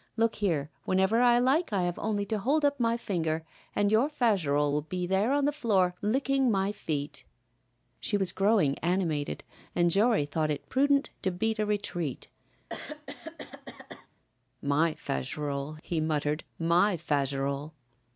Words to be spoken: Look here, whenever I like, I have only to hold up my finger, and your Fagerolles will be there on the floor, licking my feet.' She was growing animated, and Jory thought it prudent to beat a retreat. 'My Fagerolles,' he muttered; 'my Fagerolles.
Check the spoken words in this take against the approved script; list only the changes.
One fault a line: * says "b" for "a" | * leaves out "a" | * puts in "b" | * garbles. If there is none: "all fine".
all fine